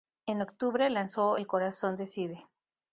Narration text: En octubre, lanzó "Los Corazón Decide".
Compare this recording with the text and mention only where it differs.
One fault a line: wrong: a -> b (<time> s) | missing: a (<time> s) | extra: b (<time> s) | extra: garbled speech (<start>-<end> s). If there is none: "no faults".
wrong: Los -> El (1.4 s)